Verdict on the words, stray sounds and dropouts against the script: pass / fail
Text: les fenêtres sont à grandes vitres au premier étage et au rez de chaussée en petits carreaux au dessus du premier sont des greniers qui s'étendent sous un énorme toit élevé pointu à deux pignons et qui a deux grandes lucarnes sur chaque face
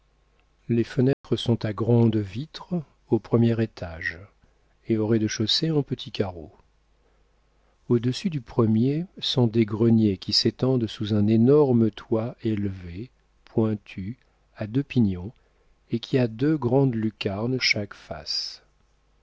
fail